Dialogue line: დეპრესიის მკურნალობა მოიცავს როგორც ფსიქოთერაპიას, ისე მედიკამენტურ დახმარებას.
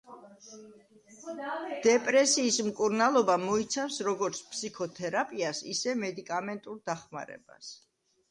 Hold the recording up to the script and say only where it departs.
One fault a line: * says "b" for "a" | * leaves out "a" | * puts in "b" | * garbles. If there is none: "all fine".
all fine